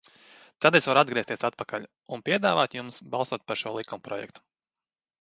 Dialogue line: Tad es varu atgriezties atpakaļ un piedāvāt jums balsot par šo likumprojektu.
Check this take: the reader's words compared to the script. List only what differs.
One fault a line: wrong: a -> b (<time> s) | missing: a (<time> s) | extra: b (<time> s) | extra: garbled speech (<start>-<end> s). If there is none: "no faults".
no faults